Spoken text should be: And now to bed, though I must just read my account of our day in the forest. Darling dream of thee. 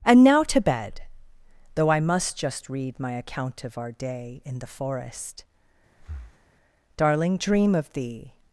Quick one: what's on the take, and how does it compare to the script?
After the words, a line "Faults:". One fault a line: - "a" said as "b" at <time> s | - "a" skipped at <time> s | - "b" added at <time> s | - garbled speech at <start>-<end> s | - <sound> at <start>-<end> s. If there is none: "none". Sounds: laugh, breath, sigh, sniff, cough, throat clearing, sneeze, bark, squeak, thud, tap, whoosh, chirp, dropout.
And now to bed, though I must just read my account of our day in the forest. Darling dream of thee.
Faults:
- breath at 6.0-6.5 s